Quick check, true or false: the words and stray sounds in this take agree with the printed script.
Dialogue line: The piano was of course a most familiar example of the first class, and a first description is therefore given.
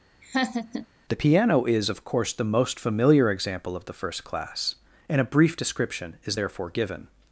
false